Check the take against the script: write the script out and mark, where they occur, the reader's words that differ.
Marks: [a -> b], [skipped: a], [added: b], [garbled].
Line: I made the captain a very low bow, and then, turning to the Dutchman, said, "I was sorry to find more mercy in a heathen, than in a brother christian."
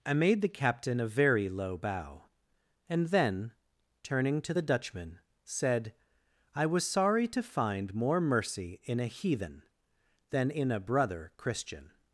I made the captain a very low bow, and then, turning to the Dutchman, said, "I was sorry to find more mercy in a heathen, than in a brother christian."